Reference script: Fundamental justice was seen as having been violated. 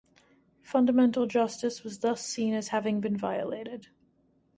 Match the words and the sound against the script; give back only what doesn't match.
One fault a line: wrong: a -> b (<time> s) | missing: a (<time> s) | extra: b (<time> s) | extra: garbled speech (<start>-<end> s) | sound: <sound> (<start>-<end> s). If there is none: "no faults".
extra: thus (2.0 s)